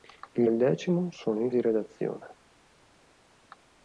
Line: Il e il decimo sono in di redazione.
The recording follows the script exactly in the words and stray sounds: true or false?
true